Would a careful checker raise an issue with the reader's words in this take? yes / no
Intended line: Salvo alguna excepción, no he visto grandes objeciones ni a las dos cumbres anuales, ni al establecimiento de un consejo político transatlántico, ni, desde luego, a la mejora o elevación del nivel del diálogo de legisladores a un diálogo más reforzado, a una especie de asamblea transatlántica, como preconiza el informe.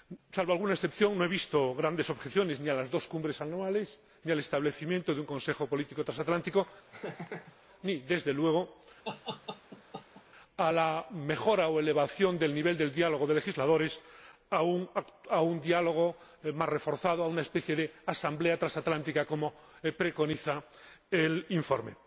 no